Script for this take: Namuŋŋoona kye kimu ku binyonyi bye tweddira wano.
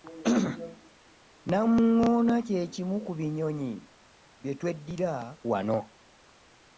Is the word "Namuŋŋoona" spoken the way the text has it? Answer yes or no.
yes